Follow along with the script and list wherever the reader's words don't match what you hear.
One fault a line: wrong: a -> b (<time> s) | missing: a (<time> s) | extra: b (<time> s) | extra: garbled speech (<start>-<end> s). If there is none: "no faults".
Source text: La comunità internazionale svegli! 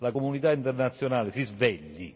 extra: si (1.3 s)